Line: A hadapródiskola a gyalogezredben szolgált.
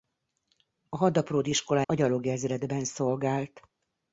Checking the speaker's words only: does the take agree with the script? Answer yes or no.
yes